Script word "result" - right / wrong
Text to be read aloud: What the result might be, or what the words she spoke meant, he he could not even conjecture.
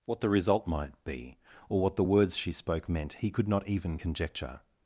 right